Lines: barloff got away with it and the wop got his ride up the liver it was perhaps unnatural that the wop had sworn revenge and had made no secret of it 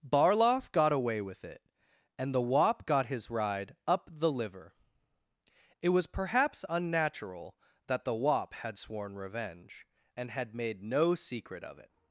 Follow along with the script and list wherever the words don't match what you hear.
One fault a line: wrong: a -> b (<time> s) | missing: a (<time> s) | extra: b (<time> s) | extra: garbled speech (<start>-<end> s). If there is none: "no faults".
no faults